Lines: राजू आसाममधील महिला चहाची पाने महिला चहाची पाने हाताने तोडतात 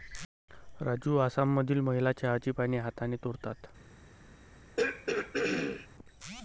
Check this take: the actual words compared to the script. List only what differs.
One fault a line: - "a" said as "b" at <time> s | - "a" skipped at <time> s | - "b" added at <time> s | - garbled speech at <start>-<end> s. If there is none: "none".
- "महिला चहाची पाने" skipped at 2.8 s